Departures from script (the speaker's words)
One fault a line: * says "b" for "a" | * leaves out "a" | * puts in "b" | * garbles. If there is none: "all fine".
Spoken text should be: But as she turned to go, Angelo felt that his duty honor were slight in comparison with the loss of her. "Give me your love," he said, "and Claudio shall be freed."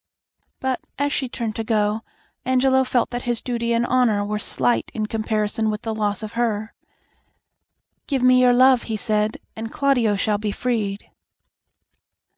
* puts in "and"